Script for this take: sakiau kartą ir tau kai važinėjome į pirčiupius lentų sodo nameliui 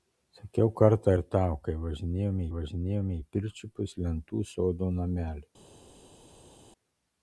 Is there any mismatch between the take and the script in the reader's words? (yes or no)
yes